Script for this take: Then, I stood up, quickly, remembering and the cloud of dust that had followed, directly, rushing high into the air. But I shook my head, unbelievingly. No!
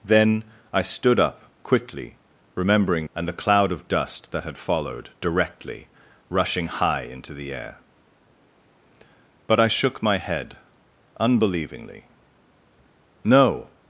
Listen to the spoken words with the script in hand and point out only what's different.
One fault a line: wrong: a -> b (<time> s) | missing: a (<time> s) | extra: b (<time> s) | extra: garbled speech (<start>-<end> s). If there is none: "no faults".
no faults